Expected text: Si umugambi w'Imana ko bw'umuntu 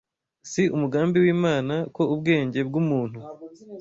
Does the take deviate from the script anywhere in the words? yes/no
yes